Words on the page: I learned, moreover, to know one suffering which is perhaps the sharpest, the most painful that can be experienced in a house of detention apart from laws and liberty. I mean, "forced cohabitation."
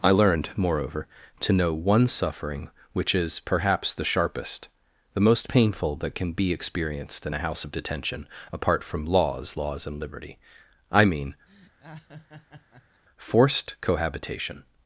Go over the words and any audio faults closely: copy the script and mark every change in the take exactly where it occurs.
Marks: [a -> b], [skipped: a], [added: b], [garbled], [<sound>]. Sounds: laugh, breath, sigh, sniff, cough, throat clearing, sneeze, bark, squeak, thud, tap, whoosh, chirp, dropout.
I learned, moreover, to know one suffering which is perhaps the sharpest, the most painful that can be experienced in a house of detention apart from laws [added: laws] and liberty. I mean, [laugh] "forced cohabitation."